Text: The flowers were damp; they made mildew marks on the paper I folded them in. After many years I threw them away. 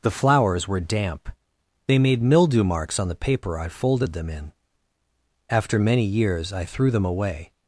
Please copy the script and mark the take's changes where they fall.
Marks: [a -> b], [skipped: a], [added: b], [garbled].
The flowers were damp; they made mildew marks on the paper I folded them in. After many years I threw them away.